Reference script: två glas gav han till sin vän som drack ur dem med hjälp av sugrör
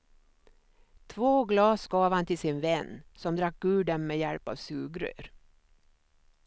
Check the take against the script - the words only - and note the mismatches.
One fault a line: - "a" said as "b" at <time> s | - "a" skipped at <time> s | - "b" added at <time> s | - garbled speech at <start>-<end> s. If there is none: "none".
none